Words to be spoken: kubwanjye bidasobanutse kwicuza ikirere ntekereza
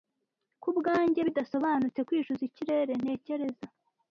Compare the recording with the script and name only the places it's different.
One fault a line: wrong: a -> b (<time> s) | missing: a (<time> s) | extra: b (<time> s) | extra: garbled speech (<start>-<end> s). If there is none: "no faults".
no faults